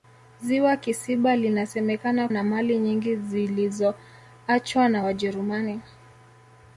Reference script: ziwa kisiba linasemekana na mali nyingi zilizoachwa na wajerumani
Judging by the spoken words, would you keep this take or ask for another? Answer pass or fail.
pass